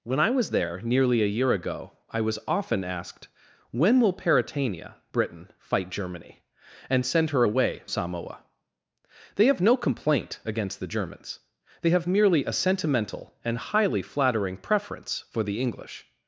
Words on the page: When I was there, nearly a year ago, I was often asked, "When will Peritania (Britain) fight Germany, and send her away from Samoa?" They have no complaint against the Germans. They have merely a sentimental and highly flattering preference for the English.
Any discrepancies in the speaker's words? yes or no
yes